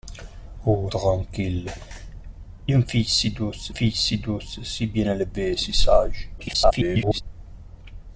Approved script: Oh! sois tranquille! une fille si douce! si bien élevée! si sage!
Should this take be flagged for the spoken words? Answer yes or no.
yes